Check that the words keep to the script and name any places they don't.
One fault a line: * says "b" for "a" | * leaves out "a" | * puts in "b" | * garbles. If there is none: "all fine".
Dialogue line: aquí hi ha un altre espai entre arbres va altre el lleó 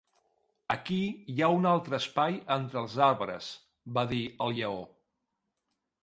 * puts in "els"
* says "dir" for "altre"